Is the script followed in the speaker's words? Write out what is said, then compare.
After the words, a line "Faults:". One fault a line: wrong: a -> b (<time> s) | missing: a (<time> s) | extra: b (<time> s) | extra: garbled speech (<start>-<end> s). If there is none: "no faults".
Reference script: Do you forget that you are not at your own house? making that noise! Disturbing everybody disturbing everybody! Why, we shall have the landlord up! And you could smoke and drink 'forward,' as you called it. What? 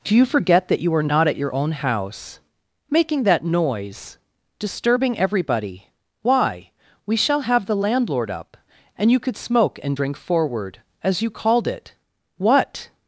Do you forget that you are not at your own house? making that noise! Disturbing everybody! Why, we shall have the landlord up! And you could smoke and drink 'forward,' as you called it. What?
Faults:
missing: disturbing everybody (5.9 s)